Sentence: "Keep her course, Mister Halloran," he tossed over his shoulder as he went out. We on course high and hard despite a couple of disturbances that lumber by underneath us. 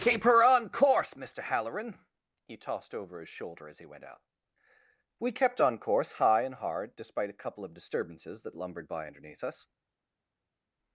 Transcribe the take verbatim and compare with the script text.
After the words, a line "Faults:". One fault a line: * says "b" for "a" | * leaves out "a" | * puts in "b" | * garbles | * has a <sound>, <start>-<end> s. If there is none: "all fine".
"Keep her on course, Mister Halloran," he tossed over his shoulder as he went out. We kept on course high and hard despite a couple of disturbances that lumbered by underneath us.
Faults:
* puts in "on"
* puts in "kept"
* says "lumbered" for "lumber"